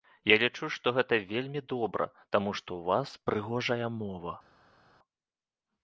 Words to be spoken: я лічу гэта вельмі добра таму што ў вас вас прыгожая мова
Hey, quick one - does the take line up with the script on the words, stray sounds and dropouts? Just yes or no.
no